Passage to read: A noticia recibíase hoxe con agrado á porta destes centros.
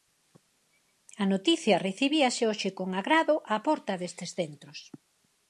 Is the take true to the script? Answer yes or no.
yes